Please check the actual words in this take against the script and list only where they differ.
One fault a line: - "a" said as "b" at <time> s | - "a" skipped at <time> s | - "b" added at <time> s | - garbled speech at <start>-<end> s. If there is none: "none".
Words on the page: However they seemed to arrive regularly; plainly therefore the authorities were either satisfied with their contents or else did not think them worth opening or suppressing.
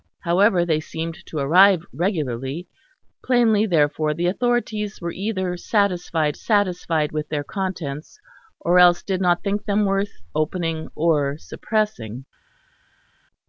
- "satisfied" added at 6.3 s